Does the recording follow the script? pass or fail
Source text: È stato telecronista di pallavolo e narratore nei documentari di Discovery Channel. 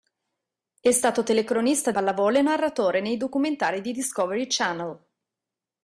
fail